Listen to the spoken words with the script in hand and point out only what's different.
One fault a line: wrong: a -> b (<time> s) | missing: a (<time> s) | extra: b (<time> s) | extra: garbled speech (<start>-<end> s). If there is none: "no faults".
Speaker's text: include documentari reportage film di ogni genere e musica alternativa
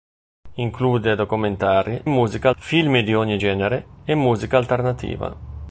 wrong: reportage -> musica (2.0 s)